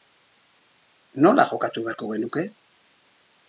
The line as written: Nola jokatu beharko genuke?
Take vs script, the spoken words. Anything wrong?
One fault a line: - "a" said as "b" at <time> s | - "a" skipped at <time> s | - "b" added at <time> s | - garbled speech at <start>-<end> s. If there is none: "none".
none